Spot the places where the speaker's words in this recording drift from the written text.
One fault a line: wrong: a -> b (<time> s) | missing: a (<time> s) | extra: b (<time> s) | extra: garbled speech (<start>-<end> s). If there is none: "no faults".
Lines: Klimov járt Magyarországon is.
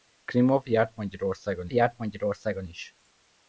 extra: járt Magyarországon (1.7 s)